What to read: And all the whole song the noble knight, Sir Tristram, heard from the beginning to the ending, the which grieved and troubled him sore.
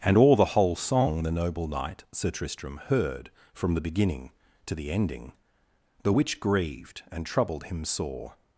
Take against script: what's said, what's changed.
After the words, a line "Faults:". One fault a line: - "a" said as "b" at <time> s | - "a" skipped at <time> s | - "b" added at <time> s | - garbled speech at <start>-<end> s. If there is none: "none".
And all the whole song the noble knight, Sir Tristram, heard from the beginning to the ending, the which grieved and troubled him sore.
Faults:
none